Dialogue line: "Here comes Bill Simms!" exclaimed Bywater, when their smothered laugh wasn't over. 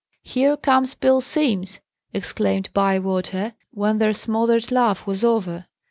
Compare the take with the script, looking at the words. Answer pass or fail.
fail